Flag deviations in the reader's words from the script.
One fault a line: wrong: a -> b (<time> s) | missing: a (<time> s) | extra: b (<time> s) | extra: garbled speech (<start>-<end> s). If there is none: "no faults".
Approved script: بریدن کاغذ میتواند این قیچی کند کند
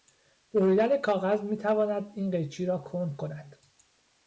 extra: را (2.6 s)